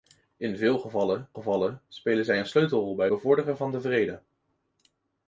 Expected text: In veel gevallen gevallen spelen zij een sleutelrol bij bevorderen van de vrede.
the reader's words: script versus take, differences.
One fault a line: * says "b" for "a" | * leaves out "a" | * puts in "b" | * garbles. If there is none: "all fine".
all fine